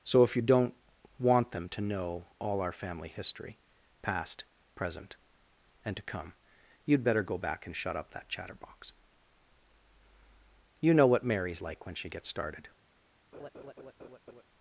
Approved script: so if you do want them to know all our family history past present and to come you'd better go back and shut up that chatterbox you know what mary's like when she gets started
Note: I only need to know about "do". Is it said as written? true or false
false